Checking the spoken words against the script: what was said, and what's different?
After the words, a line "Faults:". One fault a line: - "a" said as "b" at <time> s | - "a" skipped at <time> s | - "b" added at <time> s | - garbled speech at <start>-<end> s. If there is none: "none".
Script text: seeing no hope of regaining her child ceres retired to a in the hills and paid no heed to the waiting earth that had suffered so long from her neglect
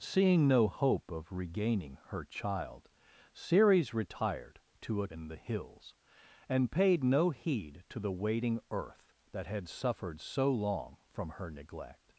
seeing no hope of regaining her child ceres retired to a in the hills and paid no heed to the waiting earth that had suffered so long from her neglect
Faults:
none